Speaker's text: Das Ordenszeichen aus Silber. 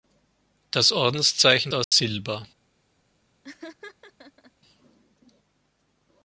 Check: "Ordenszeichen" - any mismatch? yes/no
no